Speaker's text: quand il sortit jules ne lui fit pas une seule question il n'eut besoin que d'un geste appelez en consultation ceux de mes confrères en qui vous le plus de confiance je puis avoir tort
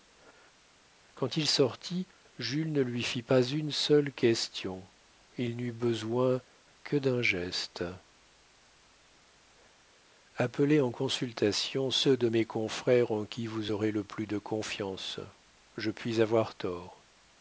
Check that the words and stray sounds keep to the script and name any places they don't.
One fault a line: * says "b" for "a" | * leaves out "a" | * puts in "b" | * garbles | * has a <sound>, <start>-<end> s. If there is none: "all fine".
* puts in "aurez"